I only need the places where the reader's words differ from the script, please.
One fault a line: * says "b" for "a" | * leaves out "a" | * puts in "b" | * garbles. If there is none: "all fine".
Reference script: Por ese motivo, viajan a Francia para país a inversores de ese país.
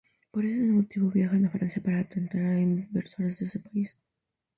* says "tentar" for "país"